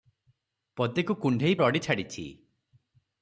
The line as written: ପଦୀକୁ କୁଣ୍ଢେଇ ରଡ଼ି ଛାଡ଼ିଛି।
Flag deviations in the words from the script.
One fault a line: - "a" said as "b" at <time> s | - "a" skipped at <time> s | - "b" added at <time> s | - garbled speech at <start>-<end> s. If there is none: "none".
none